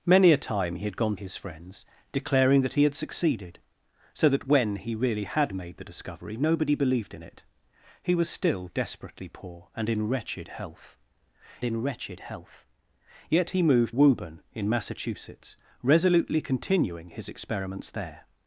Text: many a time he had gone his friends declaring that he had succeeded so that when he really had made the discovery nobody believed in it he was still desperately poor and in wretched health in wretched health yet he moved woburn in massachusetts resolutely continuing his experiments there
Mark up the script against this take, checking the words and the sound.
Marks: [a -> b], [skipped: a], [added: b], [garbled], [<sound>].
many a time he had gone his friends declaring that he had succeeded so that when he really had made the discovery nobody believed in it he was still desperately poor and in wretched health in wretched health yet he moved woburn in massachusetts resolutely continuing his experiments there